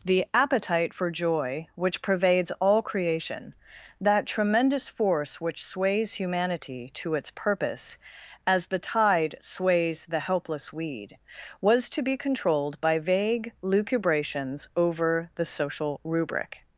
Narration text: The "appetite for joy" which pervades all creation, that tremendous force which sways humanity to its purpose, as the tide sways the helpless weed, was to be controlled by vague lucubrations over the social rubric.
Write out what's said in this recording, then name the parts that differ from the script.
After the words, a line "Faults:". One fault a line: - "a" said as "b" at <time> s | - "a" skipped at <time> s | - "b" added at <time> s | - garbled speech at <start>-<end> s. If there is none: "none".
The "appetite for joy" which pervades all creation, that tremendous force which sways humanity to its purpose, as the tide sways the helpless weed, was to be controlled by vague lucubrations over the social rubric.
Faults:
none